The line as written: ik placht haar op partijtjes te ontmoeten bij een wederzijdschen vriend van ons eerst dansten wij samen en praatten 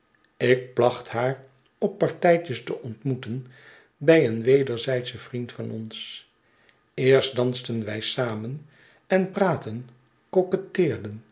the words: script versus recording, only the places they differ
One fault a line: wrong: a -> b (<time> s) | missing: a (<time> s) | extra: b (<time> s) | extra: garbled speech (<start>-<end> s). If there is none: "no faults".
no faults